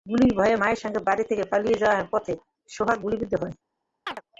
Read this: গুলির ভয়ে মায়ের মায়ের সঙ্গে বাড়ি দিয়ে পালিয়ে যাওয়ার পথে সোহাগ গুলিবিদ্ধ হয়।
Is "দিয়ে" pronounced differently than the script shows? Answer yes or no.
yes